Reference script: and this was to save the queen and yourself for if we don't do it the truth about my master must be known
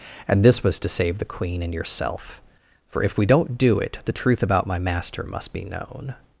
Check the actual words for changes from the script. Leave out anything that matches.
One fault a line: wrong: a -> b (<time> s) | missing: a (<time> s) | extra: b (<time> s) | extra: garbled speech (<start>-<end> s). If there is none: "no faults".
no faults